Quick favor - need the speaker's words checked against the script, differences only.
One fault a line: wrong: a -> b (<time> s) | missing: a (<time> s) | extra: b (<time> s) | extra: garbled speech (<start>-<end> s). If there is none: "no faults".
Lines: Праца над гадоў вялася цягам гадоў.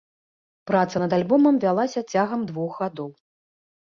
wrong: гадоў -> альбомам (1.2 s)
extra: двух (2.5 s)